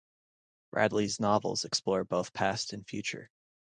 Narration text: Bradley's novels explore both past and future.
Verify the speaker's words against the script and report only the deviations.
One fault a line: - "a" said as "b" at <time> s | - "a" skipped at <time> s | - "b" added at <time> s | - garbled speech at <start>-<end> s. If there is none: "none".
none